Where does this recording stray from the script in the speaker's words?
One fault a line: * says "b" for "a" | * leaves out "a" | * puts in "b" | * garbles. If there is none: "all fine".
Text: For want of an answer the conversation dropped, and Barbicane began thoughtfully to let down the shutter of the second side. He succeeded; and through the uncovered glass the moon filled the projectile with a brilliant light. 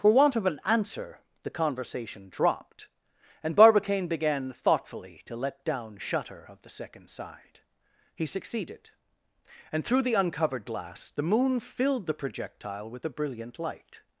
* leaves out "the"